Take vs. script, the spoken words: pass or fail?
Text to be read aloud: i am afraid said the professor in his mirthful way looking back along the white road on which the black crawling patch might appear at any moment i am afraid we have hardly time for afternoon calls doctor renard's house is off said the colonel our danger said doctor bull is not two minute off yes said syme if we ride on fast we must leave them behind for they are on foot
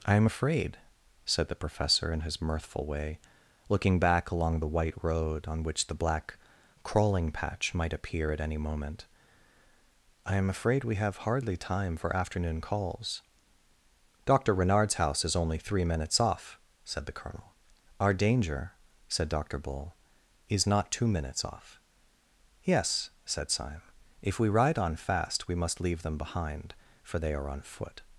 fail